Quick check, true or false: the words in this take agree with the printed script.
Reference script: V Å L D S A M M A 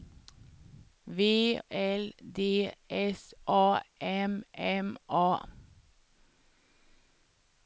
false